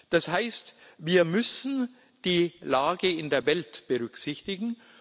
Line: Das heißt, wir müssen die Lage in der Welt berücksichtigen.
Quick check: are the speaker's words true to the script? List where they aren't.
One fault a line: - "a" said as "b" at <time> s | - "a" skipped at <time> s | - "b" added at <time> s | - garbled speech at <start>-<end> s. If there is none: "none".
none